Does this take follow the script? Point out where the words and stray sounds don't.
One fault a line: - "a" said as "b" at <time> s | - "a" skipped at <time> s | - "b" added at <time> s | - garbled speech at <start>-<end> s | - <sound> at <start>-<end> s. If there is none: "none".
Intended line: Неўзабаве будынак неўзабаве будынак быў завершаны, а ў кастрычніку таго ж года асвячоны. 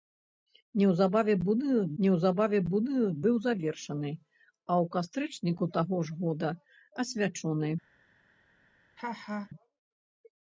- laugh at 9.0-9.5 s